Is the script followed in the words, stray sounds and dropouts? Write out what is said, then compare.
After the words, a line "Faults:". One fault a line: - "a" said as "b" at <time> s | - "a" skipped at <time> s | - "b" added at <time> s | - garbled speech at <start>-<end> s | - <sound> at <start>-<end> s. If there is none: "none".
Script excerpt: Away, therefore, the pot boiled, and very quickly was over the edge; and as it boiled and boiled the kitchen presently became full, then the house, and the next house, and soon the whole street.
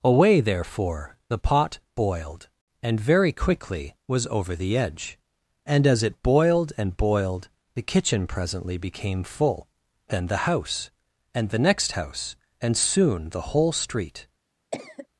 Away, therefore, the pot boiled, and very quickly was over the edge; and as it boiled and boiled the kitchen presently became full, then the house, and the next house, and soon the whole street.
Faults:
- cough at 14.7-15.1 s